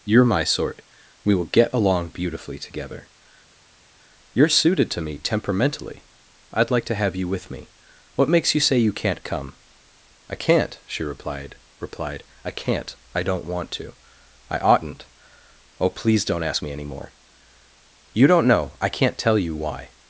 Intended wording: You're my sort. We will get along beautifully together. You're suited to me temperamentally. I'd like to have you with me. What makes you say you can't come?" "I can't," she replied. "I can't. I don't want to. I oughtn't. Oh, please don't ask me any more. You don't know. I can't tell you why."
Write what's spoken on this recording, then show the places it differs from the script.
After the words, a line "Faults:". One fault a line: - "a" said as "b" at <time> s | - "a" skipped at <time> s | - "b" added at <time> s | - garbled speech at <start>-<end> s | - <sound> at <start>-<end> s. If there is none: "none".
You're my sort. We will get along beautifully together. You're suited to me temperamentally. I'd like to have you with me. What makes you say you can't come?" "I can't," she replied replied. "I can't. I don't want to. I oughtn't. Oh, please don't ask me any more. You don't know. I can't tell you why."
Faults:
- "replied" added at 11.8 s